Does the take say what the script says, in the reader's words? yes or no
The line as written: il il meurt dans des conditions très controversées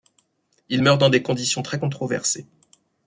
no